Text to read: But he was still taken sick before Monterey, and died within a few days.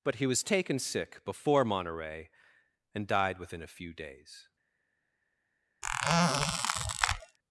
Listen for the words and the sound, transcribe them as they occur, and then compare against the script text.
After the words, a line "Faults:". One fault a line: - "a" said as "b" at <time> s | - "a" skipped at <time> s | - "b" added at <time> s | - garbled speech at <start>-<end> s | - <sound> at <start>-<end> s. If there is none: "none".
But he was taken sick before Monterey, and died within a few days.
Faults:
- "still" skipped at 0.4 s
- squeak at 5.8-7.4 s